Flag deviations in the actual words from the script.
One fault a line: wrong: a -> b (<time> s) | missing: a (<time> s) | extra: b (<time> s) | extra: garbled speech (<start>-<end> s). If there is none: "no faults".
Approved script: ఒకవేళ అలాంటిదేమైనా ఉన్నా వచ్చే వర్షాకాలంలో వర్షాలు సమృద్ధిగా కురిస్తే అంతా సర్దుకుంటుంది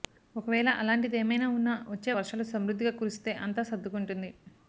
missing: వర్షాకాలంలో (2.1 s)